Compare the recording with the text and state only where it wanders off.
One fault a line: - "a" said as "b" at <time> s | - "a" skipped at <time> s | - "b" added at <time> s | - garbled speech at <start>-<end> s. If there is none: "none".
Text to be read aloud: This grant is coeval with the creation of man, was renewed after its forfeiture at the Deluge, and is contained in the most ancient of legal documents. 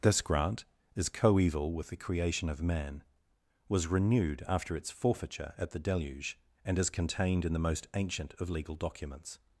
none